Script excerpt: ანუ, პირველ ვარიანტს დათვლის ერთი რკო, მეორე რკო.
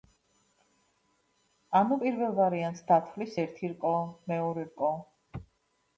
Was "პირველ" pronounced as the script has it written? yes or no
yes